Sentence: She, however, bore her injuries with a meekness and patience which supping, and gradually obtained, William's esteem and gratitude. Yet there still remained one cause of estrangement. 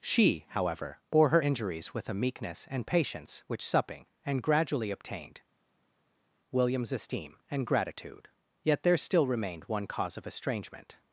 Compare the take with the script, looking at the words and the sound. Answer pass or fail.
pass